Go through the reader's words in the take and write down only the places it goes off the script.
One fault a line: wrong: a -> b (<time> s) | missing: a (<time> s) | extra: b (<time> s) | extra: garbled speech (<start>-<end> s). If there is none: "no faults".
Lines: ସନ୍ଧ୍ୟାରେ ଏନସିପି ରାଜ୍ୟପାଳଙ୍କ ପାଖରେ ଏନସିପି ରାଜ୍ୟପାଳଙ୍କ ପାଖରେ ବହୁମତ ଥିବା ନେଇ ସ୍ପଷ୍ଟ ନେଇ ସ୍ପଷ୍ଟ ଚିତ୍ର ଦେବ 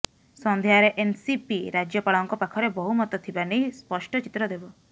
missing: ଏନସିପି ରାଜ୍ୟପାଳଙ୍କ ପାଖରେ (2.7 s)
missing: ନେଇ ସ୍ପଷ୍ଟ (4.2 s)